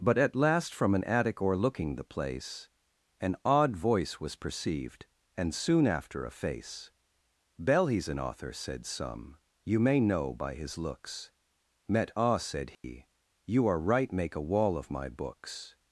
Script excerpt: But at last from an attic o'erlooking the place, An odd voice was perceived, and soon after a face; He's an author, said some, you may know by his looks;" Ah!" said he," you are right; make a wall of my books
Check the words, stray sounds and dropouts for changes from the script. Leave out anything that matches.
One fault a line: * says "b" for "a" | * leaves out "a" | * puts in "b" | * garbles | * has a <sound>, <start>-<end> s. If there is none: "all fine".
* puts in "bell"
* puts in "met"
* has a dropout, 12.7-12.8 s